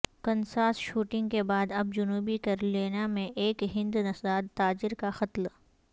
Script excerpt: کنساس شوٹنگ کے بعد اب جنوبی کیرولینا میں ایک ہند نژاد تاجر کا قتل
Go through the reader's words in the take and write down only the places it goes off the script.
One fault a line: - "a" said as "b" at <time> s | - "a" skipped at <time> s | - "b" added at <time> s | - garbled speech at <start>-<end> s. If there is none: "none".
none